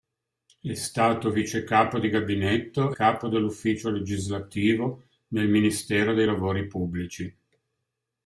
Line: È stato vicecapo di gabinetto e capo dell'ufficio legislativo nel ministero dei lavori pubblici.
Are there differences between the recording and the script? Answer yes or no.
yes